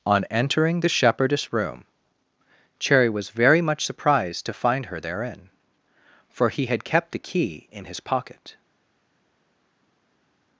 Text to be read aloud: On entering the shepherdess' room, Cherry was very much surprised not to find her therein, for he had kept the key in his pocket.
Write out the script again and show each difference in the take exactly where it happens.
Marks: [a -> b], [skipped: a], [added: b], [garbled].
On entering the shepherdess' room, Cherry was very much surprised [skipped: not] to find her therein, for he had kept the key in his pocket.